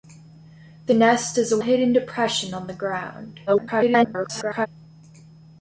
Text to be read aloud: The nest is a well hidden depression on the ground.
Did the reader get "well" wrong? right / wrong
wrong